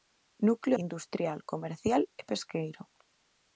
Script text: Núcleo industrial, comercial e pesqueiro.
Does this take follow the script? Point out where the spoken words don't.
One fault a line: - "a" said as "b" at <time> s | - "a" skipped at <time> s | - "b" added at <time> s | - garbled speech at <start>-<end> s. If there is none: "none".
none